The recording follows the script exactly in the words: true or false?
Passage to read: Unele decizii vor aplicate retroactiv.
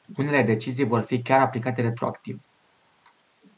false